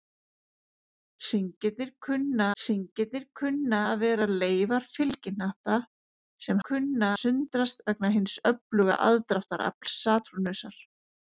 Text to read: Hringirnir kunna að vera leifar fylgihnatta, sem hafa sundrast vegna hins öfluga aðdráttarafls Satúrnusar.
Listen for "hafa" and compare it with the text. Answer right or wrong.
wrong